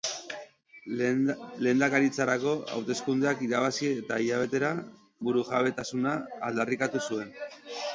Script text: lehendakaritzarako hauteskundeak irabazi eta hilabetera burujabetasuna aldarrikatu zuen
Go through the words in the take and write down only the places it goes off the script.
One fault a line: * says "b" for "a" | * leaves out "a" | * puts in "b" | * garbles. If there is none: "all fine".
all fine